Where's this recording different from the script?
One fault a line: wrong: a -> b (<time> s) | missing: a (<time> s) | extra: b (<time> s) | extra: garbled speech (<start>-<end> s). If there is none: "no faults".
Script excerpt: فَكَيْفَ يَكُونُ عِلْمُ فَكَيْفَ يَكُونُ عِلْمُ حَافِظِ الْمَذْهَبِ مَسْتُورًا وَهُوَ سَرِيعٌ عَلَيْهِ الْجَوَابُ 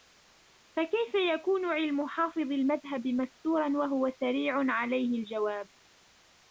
missing: فَكَيْفَ يَكُونُ عِلْمُ (2.1 s)